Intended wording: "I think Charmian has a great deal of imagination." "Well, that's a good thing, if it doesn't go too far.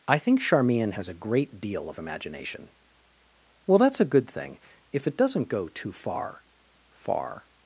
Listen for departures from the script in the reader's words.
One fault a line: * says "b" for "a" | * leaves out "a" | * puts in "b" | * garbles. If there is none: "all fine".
* puts in "far"